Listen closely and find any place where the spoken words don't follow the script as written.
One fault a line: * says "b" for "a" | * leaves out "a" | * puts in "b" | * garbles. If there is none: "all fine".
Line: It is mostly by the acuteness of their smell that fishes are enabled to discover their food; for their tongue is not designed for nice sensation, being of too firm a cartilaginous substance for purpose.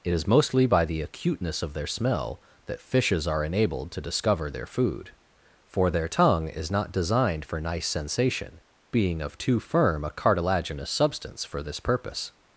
* puts in "this"